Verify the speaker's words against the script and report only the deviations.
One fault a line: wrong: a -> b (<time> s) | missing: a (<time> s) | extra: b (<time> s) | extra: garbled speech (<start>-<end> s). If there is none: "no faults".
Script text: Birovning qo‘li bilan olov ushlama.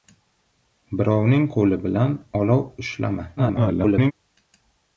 extra: garbled speech (3.4-4.1 s)